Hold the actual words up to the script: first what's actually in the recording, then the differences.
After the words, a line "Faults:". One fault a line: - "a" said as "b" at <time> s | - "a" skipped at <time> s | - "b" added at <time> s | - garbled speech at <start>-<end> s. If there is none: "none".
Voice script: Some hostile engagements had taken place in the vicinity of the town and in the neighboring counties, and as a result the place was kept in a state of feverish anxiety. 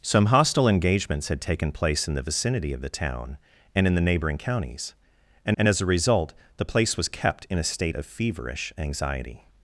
Some hostile engagements had taken place in the vicinity of the town and in the neighboring counties, and and as a result the place was kept in a state of feverish anxiety.
Faults:
- "and" added at 5.6 s